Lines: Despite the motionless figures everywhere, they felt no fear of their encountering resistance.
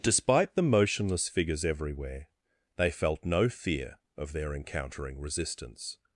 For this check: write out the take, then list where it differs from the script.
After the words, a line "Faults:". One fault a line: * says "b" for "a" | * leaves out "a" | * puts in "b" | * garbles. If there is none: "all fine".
Despite the motionless figures everywhere, they felt no fear of their encountering resistance.
Faults:
all fine